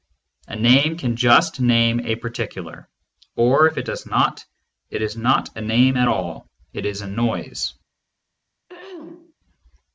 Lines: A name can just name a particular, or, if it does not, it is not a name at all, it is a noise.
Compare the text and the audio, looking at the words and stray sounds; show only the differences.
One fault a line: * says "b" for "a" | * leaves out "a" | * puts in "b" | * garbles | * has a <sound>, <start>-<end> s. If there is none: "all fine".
* has a throat clearing, 8.7-9.3 s